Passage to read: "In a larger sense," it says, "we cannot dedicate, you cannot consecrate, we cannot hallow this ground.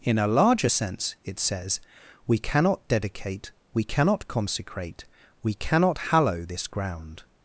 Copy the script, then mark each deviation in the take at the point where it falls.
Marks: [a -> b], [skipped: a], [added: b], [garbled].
"In a larger sense," it says, "we cannot dedicate, [you -> we] cannot consecrate, we cannot hallow this ground.